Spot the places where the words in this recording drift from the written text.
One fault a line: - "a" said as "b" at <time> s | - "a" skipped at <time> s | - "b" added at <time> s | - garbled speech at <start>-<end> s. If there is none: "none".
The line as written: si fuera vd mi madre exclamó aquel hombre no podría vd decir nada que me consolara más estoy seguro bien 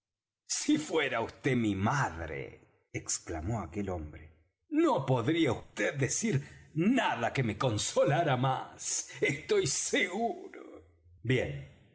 none